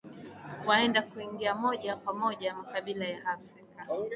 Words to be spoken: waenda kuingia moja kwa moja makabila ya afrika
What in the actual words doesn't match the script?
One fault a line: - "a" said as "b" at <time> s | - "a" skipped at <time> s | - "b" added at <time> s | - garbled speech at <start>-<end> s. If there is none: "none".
none